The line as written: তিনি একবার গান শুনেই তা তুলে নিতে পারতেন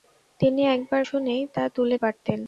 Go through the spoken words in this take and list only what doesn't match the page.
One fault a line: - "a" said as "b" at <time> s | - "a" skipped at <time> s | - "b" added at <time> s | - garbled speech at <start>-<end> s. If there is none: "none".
- "গান" skipped at 1.0 s
- "নিতে" skipped at 2.0 s